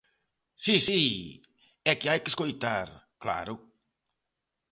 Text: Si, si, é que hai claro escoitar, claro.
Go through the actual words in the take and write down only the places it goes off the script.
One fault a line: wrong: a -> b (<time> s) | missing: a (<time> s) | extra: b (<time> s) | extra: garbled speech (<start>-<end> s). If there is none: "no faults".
wrong: claro -> que (2.2 s)